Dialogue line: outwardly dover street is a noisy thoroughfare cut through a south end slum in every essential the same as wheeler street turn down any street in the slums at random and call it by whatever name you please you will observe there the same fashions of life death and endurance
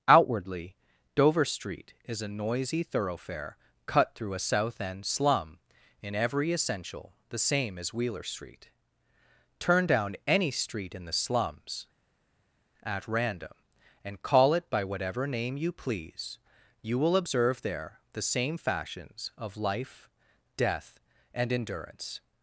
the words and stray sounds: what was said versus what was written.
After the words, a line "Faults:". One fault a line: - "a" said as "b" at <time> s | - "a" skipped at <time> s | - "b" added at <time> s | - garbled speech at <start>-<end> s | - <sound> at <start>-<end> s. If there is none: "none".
outwardly dover street is a noisy thoroughfare cut through a south end slum in every essential the same as wheeler street turn down any street in the slums at random and call it by whatever name you please you will observe there the same fashions of life death and endurance
Faults:
none